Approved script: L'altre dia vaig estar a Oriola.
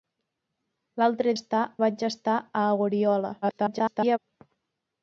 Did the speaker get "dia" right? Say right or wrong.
wrong